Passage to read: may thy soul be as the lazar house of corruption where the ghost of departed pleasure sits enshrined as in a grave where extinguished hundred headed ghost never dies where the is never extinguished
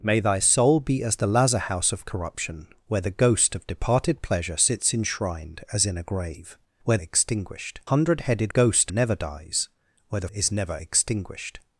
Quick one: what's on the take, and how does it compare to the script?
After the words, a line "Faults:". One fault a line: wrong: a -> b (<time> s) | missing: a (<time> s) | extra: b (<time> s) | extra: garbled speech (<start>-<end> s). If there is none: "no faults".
may thy soul be as the lazar house of corruption where the ghost of departed pleasure sits enshrined as in a grave where extinguished hundred headed ghost never dies where the is never extinguished
Faults:
no faults